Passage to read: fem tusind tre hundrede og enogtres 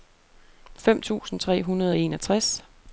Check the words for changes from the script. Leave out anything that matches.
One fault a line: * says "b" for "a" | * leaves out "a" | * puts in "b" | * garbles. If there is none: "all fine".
all fine